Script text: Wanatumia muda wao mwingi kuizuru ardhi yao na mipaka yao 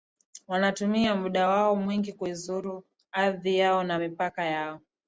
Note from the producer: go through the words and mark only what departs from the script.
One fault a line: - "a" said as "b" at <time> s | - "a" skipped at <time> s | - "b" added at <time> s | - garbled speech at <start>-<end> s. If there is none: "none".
none